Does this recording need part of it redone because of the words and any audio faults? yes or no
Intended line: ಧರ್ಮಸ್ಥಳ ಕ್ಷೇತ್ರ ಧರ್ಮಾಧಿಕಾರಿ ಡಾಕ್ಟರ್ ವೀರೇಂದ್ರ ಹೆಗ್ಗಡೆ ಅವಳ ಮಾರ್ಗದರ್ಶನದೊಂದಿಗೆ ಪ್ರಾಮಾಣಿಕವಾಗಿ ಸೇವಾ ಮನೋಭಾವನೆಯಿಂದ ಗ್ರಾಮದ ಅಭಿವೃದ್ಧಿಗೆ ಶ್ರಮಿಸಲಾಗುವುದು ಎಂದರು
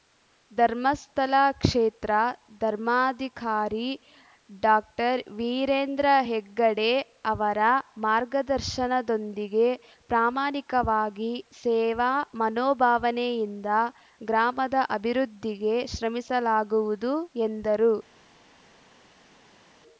yes